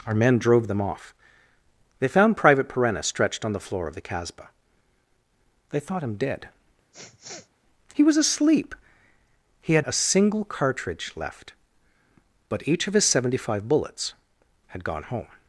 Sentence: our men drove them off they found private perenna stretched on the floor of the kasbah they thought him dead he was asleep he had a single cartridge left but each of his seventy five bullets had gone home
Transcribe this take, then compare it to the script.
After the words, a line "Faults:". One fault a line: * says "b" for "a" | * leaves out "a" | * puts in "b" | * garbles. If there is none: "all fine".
our men drove them off they found private perenna stretched on the floor of the kasbah they thought him dead he was asleep he had a single cartridge left but each of his seventy five bullets had gone home
Faults:
all fine